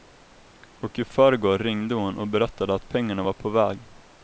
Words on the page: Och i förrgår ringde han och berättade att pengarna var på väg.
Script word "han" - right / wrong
wrong